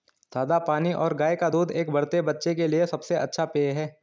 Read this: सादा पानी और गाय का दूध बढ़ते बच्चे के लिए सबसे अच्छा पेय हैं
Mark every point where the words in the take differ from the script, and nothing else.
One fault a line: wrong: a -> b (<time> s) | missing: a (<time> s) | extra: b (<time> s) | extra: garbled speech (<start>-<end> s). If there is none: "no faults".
extra: एक (1.7 s)